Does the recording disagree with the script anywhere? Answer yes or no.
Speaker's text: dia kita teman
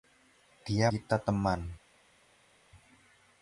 no